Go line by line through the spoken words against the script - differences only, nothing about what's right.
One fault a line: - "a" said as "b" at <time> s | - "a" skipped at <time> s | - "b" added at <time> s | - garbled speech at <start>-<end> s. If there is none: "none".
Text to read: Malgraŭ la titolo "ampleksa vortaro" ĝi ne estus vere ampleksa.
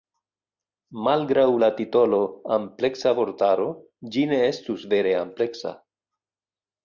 none